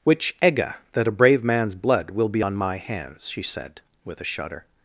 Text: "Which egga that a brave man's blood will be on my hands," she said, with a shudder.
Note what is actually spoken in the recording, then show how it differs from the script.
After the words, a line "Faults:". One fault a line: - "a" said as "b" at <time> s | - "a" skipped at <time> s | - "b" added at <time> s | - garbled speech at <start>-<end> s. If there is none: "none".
"Which egga that a brave man's blood will be on my hands," she said, with a shudder.
Faults:
none